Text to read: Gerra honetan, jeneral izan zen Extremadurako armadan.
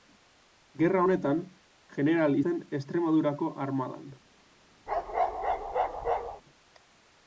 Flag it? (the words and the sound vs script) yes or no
yes